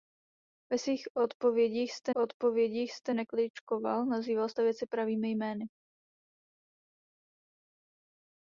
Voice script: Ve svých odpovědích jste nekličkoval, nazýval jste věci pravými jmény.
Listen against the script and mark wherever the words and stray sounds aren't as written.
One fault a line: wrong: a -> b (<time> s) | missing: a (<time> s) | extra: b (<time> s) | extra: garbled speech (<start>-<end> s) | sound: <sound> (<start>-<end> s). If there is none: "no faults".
extra: odpovědích jste (2.1 s)